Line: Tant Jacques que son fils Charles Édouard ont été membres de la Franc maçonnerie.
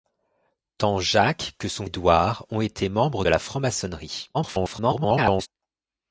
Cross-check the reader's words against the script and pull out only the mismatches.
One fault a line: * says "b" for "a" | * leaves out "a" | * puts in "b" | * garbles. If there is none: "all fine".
* leaves out "fils Charles"
* leaves out "de"
* garbles